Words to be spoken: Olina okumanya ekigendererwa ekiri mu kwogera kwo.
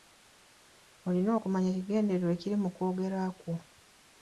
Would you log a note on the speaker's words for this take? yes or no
no